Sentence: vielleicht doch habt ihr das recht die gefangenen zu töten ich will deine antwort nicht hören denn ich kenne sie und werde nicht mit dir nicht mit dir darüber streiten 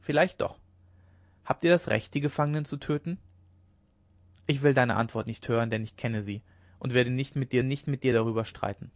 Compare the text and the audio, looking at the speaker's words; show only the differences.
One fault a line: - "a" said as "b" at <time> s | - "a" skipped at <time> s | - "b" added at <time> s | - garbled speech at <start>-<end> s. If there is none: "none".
none